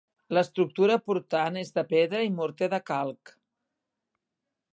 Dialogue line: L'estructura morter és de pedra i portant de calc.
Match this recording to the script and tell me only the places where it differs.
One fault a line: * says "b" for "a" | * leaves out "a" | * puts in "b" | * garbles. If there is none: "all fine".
* says "portant" for "morter"
* says "morter" for "portant"